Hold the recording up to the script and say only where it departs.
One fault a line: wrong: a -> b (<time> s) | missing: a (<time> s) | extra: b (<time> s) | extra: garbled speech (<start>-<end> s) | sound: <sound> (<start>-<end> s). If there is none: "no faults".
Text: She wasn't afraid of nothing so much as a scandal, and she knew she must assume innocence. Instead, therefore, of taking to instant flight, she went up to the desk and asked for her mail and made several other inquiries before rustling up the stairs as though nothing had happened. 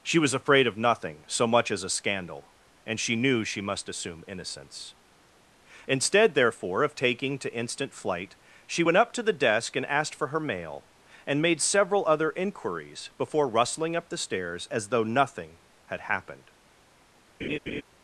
wrong: wasn't -> was (0.2 s)
sound: laugh (17.4-17.8 s)